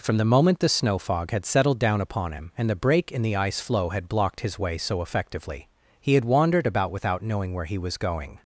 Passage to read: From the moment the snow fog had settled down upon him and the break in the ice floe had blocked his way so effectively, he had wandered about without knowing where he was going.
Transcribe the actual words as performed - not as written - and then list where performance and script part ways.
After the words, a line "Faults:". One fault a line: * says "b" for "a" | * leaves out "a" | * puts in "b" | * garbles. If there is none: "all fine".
From the moment the snow fog had settled down upon him and the break in the ice floe had blocked his way so effectively, he had wandered about without knowing where he was going.
Faults:
all fine